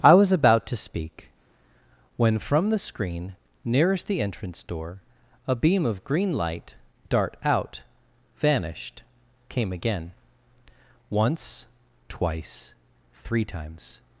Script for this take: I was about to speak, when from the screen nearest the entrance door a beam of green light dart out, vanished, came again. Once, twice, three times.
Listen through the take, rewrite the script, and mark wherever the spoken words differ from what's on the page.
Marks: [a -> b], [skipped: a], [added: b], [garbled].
I was about to speak, when from the screen nearest the entrance door a beam of green light dart out, vanished, came again. Once, twice, three times.